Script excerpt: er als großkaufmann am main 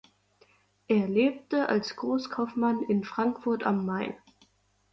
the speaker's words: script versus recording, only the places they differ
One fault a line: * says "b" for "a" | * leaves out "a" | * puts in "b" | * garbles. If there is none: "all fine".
* puts in "lebte"
* puts in "in frankfurt"